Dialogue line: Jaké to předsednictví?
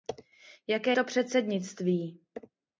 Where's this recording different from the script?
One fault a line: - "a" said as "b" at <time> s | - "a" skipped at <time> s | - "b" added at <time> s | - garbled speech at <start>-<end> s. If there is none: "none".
none